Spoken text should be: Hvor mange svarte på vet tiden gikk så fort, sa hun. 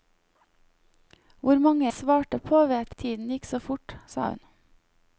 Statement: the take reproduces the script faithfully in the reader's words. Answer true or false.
true